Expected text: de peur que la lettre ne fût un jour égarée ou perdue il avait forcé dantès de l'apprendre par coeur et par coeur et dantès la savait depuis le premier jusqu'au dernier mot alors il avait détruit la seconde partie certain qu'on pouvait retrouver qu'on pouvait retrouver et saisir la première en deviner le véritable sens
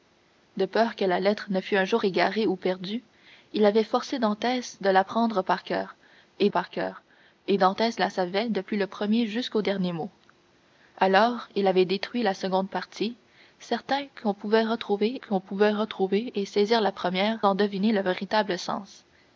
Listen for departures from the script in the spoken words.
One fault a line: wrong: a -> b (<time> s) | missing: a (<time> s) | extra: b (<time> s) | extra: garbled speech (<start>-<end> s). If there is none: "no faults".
no faults